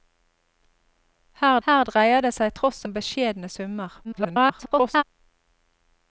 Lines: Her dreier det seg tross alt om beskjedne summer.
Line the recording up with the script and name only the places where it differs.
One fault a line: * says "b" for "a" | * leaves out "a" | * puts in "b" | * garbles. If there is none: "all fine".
* puts in "her"
* leaves out "alt"
* garbles